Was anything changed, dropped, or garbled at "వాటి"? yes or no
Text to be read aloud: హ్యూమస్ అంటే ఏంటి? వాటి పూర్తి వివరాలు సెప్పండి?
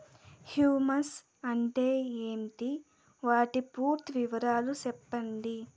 no